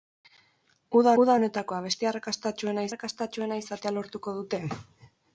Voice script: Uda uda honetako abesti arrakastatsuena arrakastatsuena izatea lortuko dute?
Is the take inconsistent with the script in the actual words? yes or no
no